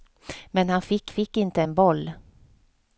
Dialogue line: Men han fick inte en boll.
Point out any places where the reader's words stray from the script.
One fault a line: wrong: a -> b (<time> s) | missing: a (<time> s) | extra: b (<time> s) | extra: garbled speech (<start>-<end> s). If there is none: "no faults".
extra: fick (1.1 s)